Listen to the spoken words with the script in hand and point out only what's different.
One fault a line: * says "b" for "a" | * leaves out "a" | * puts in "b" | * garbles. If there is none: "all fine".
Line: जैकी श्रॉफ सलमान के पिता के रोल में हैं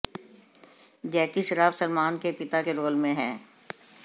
all fine